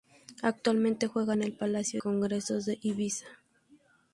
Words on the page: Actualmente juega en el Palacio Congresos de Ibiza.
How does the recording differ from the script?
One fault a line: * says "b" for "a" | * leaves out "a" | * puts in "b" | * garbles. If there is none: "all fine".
all fine